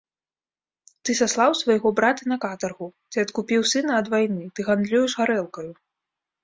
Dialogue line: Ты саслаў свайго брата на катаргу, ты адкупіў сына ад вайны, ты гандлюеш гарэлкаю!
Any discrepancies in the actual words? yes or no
no